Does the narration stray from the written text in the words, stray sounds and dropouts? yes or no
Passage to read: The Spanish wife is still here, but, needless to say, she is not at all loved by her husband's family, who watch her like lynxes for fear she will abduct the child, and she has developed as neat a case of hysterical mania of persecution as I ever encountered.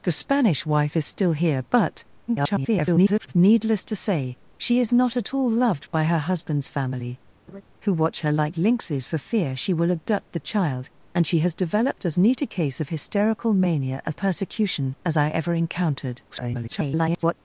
yes